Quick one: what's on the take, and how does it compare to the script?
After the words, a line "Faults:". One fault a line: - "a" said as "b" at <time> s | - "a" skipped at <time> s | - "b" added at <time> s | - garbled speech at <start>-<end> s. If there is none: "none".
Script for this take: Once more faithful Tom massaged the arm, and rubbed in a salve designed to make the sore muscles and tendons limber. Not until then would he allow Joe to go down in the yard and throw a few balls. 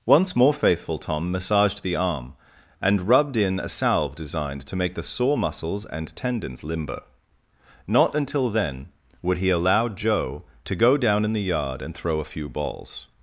Once more faithful Tom massaged the arm, and rubbed in a salve designed to make the sore muscles and tendons limber. Not until then would he allow Joe to go down in the yard and throw a few balls.
Faults:
none